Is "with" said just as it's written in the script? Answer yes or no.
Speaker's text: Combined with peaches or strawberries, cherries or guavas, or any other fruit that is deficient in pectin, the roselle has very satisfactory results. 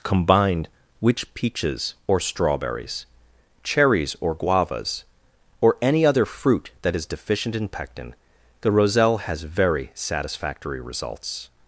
no